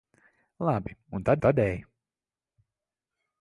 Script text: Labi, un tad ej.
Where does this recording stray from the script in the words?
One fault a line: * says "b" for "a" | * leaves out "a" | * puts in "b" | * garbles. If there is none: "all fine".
* puts in "tad"